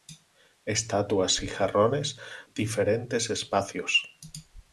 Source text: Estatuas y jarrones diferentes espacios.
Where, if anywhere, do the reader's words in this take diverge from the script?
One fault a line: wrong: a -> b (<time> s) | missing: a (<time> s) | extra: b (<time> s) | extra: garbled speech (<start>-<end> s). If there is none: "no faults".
no faults